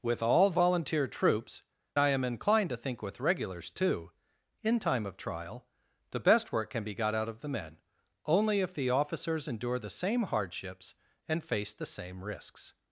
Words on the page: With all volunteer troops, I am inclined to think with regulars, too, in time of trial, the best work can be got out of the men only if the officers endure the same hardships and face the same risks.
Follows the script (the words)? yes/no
yes